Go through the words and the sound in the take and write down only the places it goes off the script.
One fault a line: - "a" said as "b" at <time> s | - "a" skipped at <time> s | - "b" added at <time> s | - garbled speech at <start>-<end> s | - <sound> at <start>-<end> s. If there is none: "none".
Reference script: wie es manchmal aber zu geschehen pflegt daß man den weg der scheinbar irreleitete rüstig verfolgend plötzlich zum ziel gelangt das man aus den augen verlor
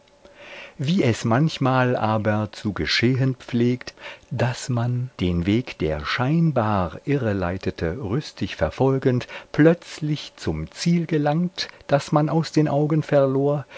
none